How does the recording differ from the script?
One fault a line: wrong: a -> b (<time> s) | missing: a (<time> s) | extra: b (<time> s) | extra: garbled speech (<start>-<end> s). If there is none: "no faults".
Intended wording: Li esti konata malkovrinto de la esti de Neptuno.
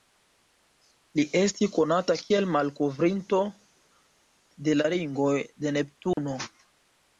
extra: kiel (2.2 s)
wrong: esti -> ringoj (5.0 s)